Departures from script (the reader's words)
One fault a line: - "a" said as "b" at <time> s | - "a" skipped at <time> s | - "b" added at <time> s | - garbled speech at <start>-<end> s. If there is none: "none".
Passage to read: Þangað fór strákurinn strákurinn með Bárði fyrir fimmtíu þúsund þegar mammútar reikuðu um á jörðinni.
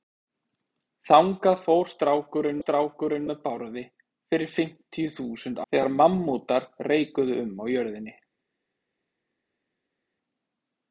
none